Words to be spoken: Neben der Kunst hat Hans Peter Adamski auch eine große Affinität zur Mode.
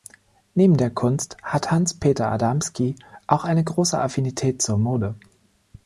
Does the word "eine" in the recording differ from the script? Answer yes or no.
no